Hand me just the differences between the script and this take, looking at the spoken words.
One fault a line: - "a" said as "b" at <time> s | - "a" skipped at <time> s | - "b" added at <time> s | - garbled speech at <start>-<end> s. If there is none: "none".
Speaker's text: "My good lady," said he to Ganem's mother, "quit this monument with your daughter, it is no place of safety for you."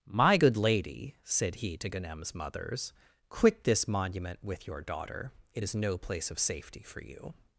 - "mother" said as "mothers" at 2.3 s